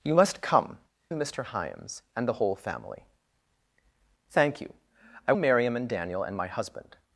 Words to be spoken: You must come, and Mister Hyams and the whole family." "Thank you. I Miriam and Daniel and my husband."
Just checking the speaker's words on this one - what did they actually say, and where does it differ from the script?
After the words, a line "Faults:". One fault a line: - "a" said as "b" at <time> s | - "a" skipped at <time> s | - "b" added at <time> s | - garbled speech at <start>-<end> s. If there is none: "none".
You must come, and Mister Hyams and the whole family." "Thank you. I Miriam and Daniel and my husband."
Faults:
none